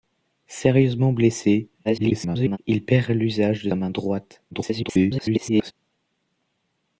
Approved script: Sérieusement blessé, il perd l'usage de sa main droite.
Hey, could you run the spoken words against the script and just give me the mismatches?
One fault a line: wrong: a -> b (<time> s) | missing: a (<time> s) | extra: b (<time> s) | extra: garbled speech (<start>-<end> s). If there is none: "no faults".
extra: garbled speech (1.8-2.6 s)
missing: sa (3.7 s)
extra: garbled speech (4.5-5.7 s)